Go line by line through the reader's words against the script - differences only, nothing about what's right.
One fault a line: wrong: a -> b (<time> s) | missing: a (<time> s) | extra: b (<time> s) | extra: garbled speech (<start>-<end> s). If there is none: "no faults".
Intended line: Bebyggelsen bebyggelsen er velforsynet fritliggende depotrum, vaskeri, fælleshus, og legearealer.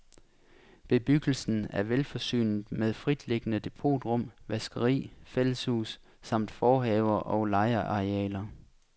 missing: bebyggelsen (1.7 s)
extra: med (2.7 s)
extra: samt forhaver (6.2 s)